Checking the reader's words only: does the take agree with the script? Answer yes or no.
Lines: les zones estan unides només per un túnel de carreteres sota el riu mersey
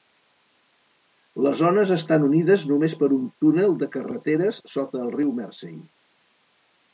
yes